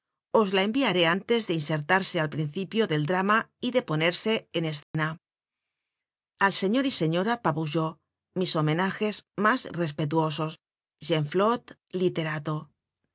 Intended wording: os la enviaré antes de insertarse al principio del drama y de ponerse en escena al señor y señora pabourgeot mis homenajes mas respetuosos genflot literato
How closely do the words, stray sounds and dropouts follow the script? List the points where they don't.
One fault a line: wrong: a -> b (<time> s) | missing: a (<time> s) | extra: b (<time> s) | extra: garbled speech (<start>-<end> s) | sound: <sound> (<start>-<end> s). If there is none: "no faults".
sound: dropout (4.8-4.9 s)